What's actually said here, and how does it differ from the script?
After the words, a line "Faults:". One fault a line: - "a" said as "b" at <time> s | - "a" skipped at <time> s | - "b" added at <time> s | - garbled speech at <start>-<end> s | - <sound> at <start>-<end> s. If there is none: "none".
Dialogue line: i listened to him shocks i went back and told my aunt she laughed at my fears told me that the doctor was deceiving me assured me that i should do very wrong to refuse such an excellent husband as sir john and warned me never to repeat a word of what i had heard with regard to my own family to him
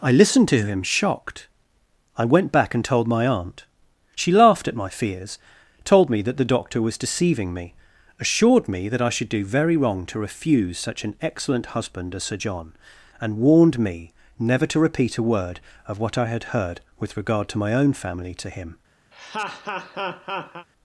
i listened to him shocked i went back and told my aunt she laughed at my fears told me that the doctor was deceiving me assured me that i should do very wrong to refuse such an excellent husband as sir john and warned me never to repeat a word of what i had heard with regard to my own family to him
Faults:
- "shocks" said as "shocked" at 0.8 s
- laugh at 19.1-20.7 s